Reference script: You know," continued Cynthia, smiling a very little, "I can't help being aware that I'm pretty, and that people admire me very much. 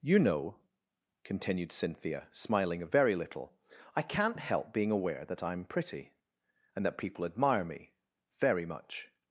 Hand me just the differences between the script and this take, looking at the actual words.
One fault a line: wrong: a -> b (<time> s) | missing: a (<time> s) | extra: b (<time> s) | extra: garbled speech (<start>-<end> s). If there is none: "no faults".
no faults